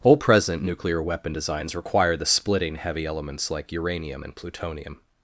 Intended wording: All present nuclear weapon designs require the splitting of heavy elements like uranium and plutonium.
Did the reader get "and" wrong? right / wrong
right